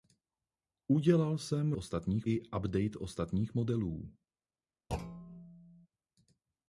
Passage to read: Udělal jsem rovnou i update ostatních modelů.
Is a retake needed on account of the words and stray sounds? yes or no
yes